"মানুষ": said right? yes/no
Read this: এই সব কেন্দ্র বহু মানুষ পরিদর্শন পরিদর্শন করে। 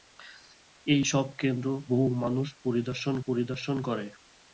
yes